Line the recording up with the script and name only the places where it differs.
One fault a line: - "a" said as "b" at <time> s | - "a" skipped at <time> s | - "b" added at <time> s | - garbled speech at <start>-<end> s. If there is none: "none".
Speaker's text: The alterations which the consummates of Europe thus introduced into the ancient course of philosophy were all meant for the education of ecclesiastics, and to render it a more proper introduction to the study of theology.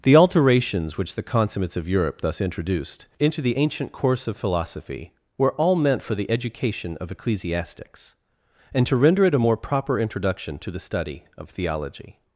none